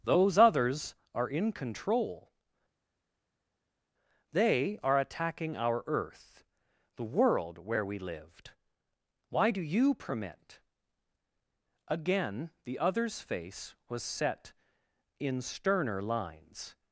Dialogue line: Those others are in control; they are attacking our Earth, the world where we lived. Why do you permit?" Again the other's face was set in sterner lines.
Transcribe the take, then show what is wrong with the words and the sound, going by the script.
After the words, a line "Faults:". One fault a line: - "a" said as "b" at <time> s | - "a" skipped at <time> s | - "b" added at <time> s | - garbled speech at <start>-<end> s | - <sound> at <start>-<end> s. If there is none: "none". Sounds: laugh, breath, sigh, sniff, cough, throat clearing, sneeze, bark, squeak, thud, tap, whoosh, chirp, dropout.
Those others are in control; they are attacking our Earth, the world where we lived. Why do you permit?" Again the other's face was set in sterner lines.
Faults:
none